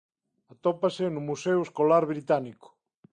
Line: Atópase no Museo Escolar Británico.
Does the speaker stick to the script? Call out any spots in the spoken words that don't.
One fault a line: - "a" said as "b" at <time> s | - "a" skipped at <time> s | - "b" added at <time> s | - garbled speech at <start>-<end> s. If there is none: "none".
none